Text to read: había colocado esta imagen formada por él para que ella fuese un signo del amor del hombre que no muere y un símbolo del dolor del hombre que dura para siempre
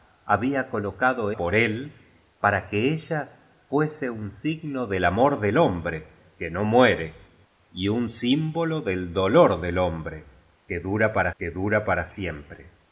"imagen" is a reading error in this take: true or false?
true